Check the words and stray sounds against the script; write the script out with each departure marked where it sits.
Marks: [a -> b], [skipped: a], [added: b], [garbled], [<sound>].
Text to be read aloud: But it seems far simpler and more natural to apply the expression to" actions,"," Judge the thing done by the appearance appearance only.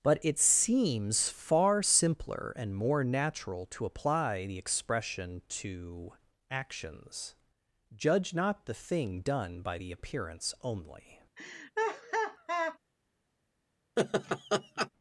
But it seems far simpler and more natural to apply the expression to" actions,"," Judge [added: not] the thing done by the appearance [skipped: appearance] only. [laugh] [laugh]